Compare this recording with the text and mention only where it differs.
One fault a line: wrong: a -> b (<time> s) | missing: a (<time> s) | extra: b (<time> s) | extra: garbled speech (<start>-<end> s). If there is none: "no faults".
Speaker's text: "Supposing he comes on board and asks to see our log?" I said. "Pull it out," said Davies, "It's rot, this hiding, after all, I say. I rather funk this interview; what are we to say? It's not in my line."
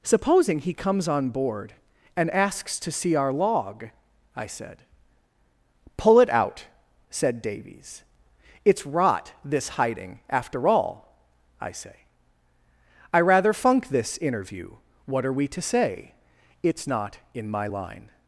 no faults